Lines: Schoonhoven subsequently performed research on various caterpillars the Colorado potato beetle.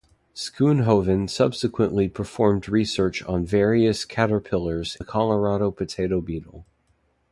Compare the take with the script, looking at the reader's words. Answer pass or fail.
pass